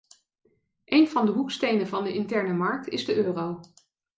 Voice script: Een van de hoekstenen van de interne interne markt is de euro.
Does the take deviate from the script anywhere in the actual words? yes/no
yes